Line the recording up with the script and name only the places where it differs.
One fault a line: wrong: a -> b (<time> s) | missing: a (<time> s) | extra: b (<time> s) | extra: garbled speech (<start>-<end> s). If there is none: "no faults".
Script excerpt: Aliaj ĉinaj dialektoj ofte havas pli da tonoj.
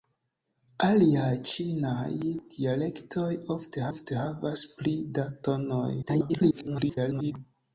extra: ofte (3.9 s)
extra: garbled speech (6.0-7.3 s)